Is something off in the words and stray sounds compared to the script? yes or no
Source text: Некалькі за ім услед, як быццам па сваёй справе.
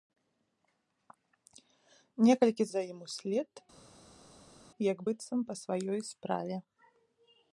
no